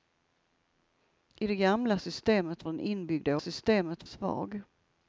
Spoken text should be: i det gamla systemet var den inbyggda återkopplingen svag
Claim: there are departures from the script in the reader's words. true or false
true